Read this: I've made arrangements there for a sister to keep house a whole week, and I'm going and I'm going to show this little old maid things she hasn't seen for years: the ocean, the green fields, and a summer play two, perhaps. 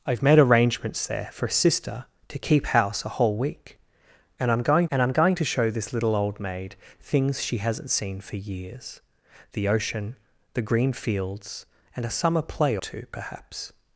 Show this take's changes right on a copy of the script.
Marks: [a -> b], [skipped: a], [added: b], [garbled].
I've made arrangements there for a sister to keep house a whole week, and I'm going and I'm going to show this little old maid things she hasn't seen for years: the ocean, the green fields, and a summer play two, perhaps.